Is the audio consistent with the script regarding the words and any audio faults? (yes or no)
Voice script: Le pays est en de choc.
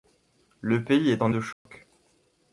no